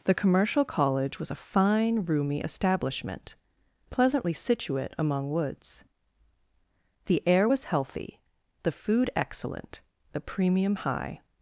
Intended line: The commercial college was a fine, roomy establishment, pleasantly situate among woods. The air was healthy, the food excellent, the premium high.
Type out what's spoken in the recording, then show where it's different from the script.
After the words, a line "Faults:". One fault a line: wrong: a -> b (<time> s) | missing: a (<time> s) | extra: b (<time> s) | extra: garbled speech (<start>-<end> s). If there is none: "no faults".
The commercial college was a fine, roomy establishment, pleasantly situate among woods. The air was healthy, the food excellent, the premium high.
Faults:
no faults